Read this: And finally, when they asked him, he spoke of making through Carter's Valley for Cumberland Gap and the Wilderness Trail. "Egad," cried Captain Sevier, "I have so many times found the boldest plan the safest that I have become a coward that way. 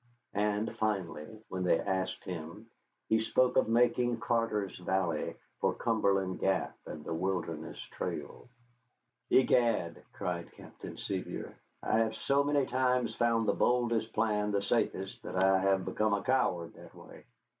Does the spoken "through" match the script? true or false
false